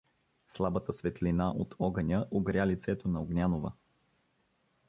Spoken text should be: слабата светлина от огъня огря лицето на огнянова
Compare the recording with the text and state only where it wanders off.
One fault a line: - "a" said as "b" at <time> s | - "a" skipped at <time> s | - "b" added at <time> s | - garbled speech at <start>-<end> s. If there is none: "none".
none